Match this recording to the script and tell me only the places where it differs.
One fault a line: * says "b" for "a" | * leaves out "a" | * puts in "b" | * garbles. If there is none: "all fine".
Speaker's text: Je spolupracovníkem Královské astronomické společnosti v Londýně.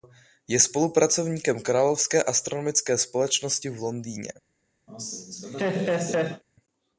all fine